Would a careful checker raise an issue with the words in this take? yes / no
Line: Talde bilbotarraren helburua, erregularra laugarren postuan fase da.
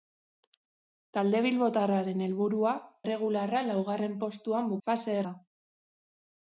no